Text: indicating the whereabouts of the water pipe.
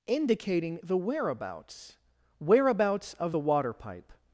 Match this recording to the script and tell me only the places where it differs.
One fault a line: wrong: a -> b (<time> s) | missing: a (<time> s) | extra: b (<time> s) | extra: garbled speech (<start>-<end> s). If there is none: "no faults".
extra: whereabouts (2.4 s)